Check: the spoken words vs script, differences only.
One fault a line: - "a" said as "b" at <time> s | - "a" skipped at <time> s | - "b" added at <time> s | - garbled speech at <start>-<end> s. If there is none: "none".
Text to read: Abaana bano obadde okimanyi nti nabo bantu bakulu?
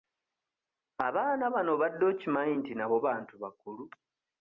none